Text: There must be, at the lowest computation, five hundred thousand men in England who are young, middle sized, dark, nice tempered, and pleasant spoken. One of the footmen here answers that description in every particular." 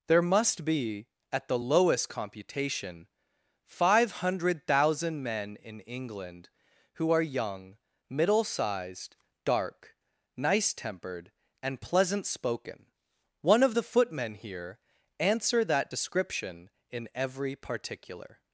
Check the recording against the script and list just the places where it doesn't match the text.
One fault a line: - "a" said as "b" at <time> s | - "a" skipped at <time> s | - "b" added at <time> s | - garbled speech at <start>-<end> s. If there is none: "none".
- "answers" said as "answer" at 15.2 s